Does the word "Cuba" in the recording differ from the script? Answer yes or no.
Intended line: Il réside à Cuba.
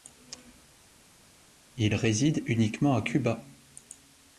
no